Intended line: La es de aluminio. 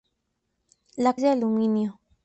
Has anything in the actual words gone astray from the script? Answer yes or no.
no